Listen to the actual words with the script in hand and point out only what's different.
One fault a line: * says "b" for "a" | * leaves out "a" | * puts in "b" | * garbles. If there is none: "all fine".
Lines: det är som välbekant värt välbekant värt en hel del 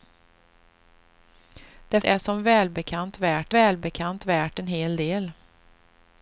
all fine